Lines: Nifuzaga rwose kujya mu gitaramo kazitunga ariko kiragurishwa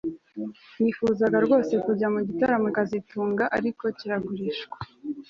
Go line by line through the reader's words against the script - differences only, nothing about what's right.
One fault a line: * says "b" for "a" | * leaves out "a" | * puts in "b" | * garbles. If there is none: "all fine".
all fine